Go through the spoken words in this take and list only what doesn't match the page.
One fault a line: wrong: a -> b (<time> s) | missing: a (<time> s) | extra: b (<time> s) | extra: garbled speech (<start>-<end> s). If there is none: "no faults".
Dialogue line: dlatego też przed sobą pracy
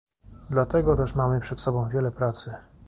extra: mamy (1.1 s)
extra: wiele (1.9 s)